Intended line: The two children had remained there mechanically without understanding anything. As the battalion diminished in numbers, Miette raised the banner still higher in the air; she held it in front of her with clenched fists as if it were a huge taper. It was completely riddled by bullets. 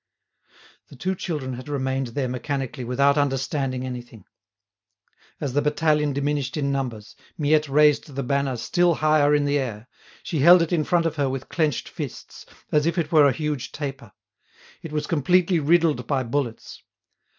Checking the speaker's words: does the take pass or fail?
pass